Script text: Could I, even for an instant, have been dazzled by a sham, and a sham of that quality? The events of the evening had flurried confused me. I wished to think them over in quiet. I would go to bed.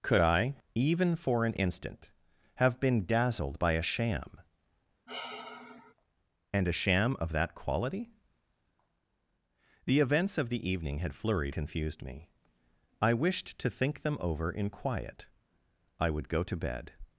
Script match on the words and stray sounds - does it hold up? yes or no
no